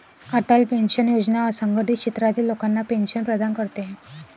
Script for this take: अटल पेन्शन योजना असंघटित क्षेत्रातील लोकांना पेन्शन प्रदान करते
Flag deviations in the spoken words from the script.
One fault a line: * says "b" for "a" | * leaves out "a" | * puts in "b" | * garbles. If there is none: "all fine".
all fine